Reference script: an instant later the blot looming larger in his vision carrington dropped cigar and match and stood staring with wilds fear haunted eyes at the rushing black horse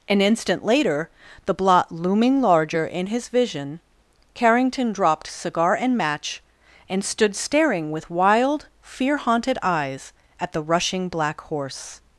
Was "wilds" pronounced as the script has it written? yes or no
no